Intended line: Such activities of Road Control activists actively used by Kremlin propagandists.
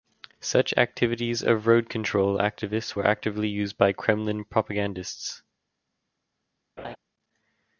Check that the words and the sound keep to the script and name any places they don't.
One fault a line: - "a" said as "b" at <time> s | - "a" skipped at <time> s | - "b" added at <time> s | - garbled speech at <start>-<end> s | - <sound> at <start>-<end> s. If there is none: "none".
- "were" added at 2.9 s
- laugh at 6.8-7.0 s